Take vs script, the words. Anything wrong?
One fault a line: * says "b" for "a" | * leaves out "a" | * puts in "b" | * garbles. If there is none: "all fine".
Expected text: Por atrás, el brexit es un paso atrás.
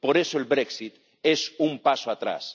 * says "eso" for "atrás"